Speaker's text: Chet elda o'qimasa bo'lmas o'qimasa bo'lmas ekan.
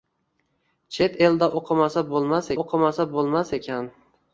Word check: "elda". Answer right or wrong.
right